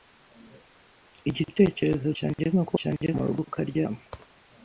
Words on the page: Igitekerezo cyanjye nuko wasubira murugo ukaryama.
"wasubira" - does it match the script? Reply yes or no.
no